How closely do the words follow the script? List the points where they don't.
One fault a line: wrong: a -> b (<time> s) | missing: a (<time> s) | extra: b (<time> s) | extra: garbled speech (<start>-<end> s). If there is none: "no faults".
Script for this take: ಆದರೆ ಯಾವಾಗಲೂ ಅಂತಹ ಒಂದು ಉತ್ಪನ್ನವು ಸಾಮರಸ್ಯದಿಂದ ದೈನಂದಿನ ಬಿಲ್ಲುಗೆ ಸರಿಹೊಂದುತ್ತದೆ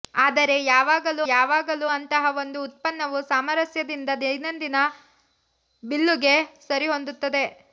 extra: ಯಾವಾಗಲೂ (1.3 s)